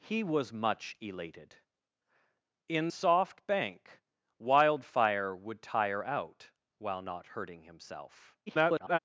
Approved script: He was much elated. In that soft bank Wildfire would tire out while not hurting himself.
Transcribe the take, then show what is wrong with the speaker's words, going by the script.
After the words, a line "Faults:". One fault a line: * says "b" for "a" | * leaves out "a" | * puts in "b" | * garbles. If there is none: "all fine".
He was much elated. In soft bank Wildfire would tire out while not hurting himself. [garbled]
Faults:
* leaves out "that"
* garbles